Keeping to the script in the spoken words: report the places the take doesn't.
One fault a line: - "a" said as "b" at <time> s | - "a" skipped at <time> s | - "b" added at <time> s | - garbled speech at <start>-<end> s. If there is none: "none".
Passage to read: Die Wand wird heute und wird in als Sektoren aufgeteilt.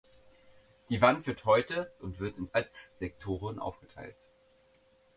none